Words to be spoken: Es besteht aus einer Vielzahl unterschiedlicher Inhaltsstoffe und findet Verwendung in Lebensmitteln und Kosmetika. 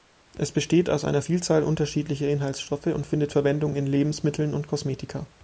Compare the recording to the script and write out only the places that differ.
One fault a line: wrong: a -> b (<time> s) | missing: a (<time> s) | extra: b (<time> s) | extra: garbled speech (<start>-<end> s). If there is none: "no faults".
no faults